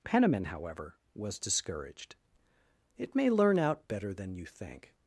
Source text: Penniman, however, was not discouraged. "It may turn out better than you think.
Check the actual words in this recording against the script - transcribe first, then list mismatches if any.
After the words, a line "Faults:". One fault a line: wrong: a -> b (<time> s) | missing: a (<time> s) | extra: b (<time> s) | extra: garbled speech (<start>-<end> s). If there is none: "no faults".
Penniman, however, was discouraged. "It may learn out better than you think.
Faults:
missing: not (1.4 s)
wrong: turn -> learn (3.3 s)